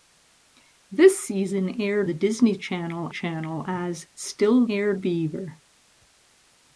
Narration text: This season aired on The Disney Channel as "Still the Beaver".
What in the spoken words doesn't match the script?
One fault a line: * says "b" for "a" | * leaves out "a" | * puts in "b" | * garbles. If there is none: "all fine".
* leaves out "on"
* puts in "Channel"
* says "aired" for "the"